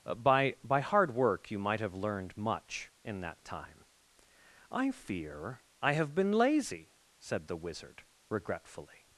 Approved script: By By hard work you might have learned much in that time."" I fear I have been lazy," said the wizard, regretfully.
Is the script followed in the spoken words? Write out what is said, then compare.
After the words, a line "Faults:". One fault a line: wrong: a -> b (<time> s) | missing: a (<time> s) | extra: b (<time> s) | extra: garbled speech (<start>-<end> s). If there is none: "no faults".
By By hard work you might have learned much in that time."" I fear I have been lazy," said the wizard, regretfully.
Faults:
no faults